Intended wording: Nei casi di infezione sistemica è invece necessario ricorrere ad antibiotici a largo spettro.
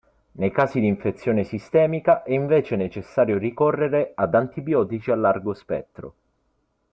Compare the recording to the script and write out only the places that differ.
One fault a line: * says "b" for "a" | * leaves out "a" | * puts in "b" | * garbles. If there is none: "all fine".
all fine